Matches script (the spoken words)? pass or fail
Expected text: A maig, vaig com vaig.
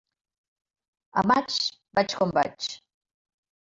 pass